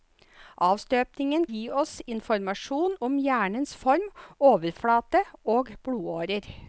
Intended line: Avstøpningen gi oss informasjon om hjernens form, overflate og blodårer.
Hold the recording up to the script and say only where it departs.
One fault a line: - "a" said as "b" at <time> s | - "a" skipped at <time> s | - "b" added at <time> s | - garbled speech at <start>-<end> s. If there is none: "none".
none